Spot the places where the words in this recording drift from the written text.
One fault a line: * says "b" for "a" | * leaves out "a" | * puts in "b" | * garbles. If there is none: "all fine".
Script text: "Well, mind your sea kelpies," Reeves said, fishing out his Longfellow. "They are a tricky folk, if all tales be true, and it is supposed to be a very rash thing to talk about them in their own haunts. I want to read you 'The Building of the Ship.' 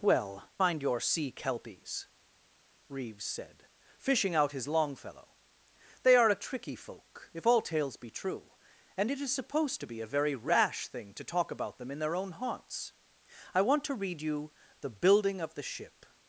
all fine